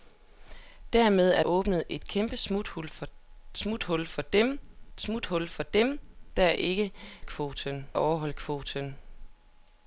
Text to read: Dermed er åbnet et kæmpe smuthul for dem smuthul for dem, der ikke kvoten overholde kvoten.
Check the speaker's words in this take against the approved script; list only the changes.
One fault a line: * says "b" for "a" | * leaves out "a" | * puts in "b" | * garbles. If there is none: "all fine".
all fine